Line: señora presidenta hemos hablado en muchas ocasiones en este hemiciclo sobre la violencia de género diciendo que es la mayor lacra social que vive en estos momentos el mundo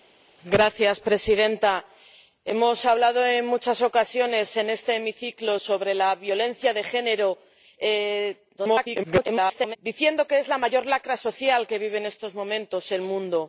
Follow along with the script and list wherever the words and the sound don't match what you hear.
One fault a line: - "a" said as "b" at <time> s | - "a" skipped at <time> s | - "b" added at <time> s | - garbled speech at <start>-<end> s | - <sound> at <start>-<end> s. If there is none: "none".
- garbled speech at 8.6-9.8 s